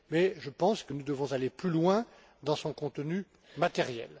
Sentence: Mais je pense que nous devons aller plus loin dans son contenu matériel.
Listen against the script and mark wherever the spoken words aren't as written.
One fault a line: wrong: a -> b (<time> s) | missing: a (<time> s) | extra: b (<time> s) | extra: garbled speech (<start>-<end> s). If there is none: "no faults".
no faults